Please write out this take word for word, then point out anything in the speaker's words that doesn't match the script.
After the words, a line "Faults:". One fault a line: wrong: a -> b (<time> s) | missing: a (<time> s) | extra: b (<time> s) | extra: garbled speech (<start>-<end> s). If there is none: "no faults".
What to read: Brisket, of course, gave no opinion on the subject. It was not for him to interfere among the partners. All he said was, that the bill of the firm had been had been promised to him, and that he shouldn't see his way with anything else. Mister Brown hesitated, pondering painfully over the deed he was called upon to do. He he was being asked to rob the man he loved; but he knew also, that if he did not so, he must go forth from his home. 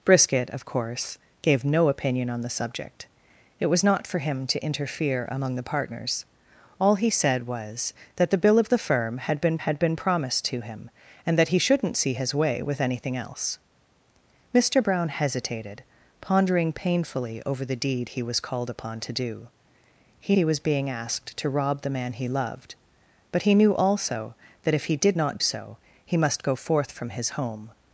Brisket, of course, gave no opinion on the subject. It was not for him to interfere among the partners. All he said was, that the bill of the firm had been had been promised to him, and that he shouldn't see his way with anything else. Mister Brown hesitated, pondering painfully over the deed he was called upon to do. He he was being asked to rob the man he loved; but he knew also, that if he did not so, he must go forth from his home.
Faults:
no faults